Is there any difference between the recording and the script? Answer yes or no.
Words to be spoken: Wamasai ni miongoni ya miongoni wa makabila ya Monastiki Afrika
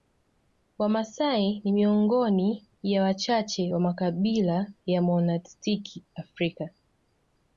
yes